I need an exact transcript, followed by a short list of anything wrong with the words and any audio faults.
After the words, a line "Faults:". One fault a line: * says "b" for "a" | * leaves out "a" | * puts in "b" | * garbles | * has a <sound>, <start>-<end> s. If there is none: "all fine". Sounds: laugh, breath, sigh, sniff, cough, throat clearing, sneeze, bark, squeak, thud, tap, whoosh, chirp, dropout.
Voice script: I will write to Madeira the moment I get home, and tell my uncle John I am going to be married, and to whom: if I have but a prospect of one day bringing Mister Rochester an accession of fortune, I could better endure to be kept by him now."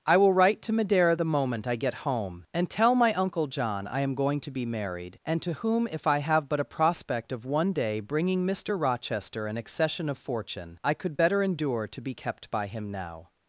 I will write to Madeira the moment I get home, and tell my uncle John I am going to be married, and to whom: if I have but a prospect of one day bringing Mister Rochester an accession of fortune, I could better endure to be kept by him now."
Faults:
all fine